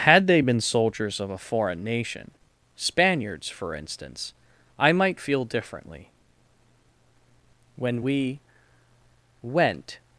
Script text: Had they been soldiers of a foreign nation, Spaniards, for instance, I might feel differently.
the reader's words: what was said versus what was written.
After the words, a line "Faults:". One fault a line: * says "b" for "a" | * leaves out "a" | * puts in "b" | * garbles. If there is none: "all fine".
Had they been soldiers of a foreign nation, Spaniards, for instance, I might feel differently. When we "went
Faults:
* puts in "When we went"